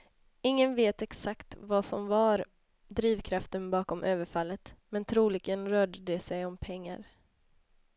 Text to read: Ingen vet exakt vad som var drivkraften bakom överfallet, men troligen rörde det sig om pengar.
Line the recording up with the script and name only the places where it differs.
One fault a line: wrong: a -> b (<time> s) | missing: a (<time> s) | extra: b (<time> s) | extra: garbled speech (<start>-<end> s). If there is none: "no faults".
no faults